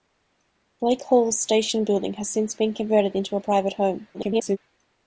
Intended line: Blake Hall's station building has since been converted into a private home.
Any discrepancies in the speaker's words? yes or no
yes